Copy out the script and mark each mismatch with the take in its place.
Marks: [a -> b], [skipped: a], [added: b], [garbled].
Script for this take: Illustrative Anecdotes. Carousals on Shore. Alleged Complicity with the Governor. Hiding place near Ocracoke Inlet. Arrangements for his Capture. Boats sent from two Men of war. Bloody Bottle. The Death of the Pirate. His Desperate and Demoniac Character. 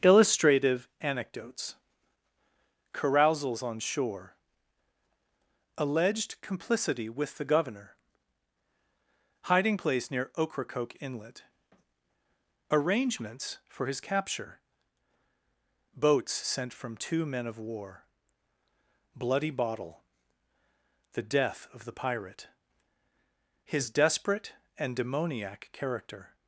Illustrative Anecdotes. Carousals on Shore. Alleged Complicity with the Governor. Hiding place near Ocracoke Inlet. Arrangements for his Capture. Boats sent from two Men of war. Bloody Bottle. The Death of the Pirate. His Desperate and Demoniac Character.